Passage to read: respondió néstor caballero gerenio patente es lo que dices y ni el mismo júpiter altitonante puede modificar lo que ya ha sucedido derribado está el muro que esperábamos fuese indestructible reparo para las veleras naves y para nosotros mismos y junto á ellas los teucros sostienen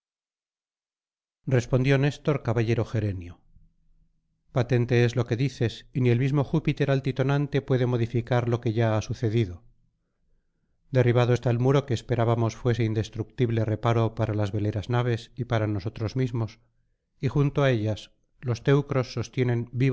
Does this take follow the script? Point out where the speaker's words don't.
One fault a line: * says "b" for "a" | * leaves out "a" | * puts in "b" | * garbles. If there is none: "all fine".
all fine